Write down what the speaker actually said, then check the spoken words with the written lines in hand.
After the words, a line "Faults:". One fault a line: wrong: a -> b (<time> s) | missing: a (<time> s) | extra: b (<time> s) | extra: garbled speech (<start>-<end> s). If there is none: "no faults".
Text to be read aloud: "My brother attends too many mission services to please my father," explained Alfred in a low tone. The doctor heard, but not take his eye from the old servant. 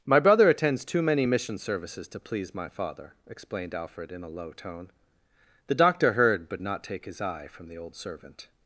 "My brother attends too many mission services to please my father," explained Alfred in a low tone. The doctor heard, but not take his eye from the old servant.
Faults:
no faults